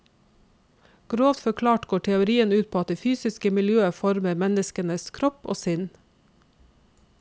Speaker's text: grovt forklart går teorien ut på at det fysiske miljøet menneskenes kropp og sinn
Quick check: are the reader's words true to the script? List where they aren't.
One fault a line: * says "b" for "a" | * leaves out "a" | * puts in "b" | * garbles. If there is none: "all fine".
* puts in "former"